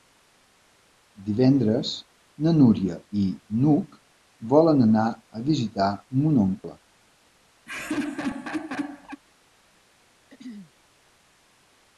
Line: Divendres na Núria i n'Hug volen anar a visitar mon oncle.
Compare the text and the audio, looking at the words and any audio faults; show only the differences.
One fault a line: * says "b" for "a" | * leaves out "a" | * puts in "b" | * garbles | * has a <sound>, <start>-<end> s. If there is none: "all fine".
* has a laugh, 7.7-9.2 s
* has a throat clearing, 10.3-10.7 s